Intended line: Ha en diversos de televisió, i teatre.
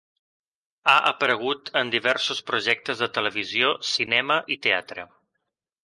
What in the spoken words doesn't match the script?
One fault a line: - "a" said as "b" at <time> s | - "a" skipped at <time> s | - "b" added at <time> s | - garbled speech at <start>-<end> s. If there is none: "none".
- "aparegut" added at 1.1 s
- "projectes" added at 2.5 s
- "cinema" added at 3.9 s